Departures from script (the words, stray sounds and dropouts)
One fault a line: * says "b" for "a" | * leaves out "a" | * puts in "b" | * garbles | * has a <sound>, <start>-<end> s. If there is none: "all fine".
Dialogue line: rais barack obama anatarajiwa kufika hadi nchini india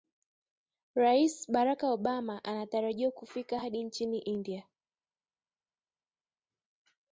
all fine